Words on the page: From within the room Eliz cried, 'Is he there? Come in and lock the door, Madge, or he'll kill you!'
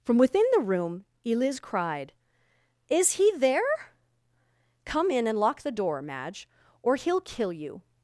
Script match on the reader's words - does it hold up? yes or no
yes